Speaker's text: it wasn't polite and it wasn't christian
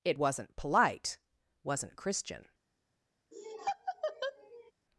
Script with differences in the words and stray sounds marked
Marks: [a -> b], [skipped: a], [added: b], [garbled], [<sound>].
it wasn't polite [skipped: and it] wasn't christian [laugh]